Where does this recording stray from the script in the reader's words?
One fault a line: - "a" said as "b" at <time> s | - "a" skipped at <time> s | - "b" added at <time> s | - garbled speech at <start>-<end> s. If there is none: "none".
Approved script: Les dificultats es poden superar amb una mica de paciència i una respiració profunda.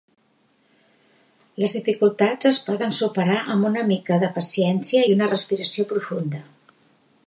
none